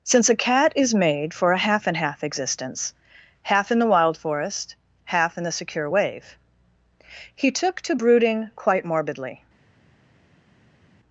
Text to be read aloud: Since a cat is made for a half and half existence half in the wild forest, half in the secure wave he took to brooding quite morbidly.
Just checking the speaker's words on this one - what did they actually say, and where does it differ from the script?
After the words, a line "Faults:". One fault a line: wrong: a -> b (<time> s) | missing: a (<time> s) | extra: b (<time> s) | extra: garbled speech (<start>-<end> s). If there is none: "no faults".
Since a cat is made for a half and half existence half in the wild forest, half in the secure wave he took to brooding quite morbidly.
Faults:
no faults